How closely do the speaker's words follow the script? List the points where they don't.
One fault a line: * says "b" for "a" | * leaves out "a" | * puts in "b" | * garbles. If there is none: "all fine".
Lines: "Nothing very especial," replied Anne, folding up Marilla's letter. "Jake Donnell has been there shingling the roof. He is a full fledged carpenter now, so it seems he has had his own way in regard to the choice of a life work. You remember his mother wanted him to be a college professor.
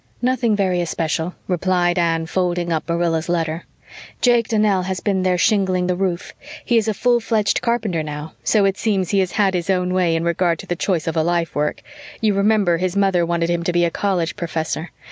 all fine